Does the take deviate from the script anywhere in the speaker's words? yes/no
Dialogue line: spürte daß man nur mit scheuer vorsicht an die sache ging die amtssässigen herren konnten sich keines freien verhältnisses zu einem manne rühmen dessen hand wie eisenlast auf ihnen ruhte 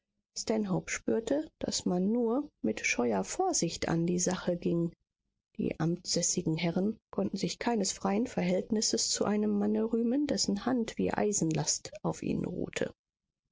no